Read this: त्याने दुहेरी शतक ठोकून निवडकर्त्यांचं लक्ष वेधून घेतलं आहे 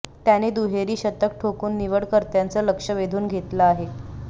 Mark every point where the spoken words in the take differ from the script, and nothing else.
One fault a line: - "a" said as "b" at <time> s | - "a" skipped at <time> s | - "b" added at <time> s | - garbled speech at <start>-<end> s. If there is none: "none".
none